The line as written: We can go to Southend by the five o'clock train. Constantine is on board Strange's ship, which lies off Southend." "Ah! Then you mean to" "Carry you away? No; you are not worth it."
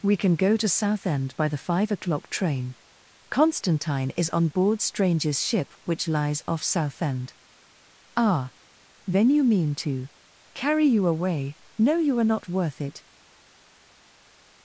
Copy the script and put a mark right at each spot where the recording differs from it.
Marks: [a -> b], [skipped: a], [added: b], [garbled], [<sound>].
We can go to Southend by the five o'clock train. Constantine is on board Strange's ship, which lies off Southend." "Ah! Then you mean to" "Carry you away? No; you are not worth it."